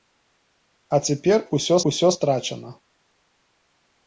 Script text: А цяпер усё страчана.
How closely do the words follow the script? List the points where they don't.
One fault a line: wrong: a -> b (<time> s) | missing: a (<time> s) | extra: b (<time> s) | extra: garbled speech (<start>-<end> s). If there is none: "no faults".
extra: усё (1.9 s)